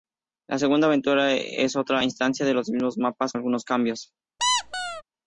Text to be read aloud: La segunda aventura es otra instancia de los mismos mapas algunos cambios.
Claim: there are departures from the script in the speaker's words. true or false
false